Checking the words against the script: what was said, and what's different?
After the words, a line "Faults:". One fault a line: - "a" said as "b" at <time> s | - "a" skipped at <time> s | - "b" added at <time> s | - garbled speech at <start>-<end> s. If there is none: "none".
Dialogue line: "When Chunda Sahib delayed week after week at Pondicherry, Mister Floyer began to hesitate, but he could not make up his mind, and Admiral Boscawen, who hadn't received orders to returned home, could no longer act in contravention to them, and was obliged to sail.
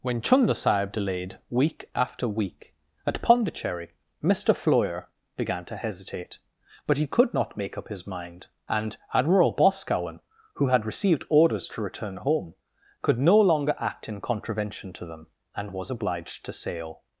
"When Chunda Sahib delayed week after week at Pondicherry, Mister Floyer began to hesitate, but he could not make up his mind, and Admiral Boscawen, who had received orders to return home, could no longer act in contravention to them, and was obliged to sail.
Faults:
- "hadn't" said as "had" at 10.7 s
- "returned" said as "return" at 11.8 s